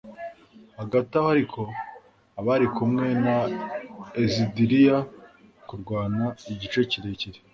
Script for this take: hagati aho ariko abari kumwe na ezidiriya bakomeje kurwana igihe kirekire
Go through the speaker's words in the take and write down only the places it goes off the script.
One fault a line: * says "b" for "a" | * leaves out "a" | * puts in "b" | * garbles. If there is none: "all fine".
* leaves out "bakomeje"